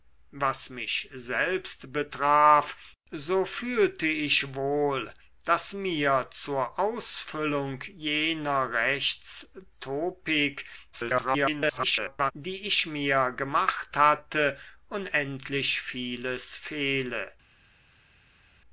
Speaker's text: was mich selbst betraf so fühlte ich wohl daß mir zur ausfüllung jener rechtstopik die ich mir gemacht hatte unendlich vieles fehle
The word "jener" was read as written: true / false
true